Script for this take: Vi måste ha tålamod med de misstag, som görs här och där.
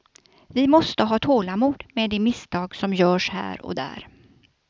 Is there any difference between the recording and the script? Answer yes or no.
no